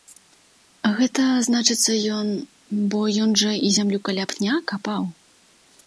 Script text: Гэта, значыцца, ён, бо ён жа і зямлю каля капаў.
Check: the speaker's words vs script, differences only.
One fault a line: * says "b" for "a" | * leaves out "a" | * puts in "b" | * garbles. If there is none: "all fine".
* puts in "пня"